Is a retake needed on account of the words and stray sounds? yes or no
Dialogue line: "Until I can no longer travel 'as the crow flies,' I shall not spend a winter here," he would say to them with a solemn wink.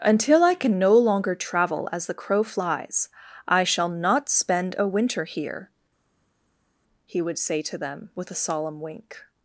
no